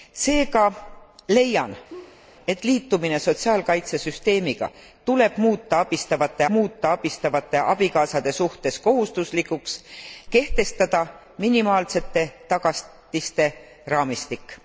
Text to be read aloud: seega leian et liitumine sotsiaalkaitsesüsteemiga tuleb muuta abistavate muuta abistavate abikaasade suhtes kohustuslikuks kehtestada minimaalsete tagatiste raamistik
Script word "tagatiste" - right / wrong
right